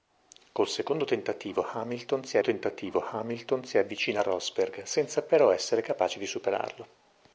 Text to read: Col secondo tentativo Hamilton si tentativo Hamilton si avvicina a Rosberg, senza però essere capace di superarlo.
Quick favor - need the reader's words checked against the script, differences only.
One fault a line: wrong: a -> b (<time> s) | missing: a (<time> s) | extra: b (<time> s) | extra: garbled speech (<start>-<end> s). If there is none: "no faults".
no faults